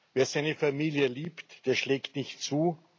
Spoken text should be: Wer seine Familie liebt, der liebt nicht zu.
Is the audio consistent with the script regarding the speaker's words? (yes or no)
no